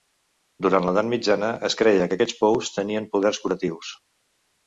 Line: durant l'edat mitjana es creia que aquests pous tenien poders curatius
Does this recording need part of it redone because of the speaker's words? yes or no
no